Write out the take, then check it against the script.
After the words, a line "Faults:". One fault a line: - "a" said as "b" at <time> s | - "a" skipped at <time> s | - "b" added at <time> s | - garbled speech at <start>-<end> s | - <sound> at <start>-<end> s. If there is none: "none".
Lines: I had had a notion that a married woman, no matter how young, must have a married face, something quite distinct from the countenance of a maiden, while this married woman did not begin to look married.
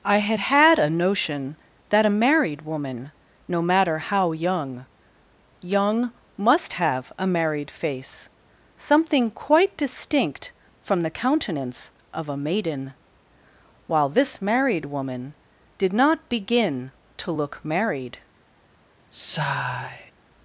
I had had a notion that a married woman, no matter how young young, must have a married face, something quite distinct from the countenance of a maiden, while this married woman did not begin to look married.
Faults:
- "young" added at 5.6 s
- sigh at 19.1-20.1 s